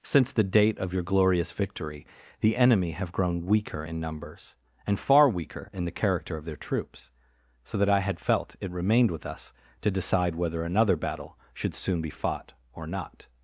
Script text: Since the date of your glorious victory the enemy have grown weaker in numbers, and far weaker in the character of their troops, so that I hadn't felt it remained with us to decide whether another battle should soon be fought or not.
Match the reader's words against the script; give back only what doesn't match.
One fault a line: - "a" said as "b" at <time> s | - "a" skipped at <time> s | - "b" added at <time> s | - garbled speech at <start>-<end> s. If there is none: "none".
- "hadn't" said as "had" at 8.0 s